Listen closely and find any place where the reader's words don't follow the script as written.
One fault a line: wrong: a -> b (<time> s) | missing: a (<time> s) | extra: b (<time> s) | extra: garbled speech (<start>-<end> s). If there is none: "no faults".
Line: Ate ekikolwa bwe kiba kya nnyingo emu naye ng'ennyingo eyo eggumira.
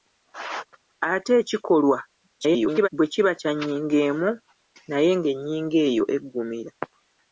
extra: garbled speech (2.4-2.9 s)